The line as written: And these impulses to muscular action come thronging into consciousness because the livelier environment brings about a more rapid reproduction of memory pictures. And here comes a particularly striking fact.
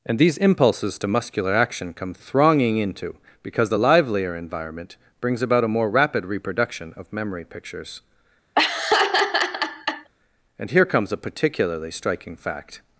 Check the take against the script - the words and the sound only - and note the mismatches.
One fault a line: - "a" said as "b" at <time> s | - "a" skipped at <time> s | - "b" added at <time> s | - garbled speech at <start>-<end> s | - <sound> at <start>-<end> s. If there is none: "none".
- "consciousness" skipped at 3.1 s
- laugh at 8.5-10.1 s